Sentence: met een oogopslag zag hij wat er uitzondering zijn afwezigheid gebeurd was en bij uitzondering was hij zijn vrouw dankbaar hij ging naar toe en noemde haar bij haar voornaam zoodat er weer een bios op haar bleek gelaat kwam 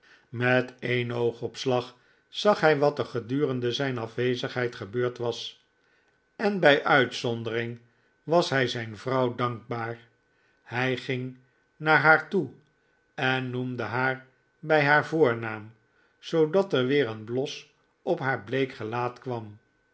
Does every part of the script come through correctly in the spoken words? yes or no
no